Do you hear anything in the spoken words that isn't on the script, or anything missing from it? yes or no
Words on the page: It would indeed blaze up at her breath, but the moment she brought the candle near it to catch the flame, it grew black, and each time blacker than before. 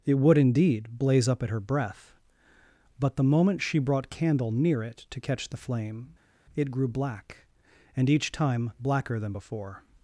yes